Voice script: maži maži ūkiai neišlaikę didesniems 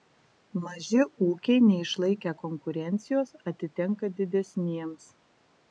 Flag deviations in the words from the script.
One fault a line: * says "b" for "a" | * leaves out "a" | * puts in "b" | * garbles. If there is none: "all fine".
* leaves out "maži"
* puts in "konkurencijos atitenka"